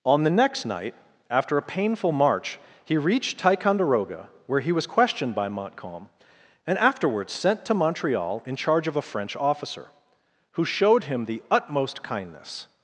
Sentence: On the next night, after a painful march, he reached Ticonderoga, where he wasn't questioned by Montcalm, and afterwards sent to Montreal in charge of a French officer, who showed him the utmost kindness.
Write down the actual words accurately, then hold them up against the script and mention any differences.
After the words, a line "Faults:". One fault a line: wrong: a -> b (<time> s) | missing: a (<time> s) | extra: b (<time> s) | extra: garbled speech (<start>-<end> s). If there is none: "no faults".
On the next night, after a painful march, he reached Ticonderoga, where he was questioned by Montcalm, and afterwards sent to Montreal in charge of a French officer, who showed him the utmost kindness.
Faults:
wrong: wasn't -> was (4.7 s)